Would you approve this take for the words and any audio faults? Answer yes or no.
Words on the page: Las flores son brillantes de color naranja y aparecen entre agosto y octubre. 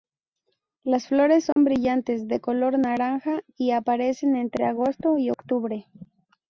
no